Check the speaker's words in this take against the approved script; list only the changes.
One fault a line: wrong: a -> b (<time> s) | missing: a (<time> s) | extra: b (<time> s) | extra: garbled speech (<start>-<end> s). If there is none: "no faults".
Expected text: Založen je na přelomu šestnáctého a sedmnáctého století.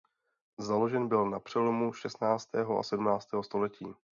wrong: je -> byl (1.1 s)